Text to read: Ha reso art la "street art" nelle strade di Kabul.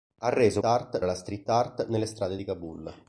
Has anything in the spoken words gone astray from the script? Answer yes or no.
no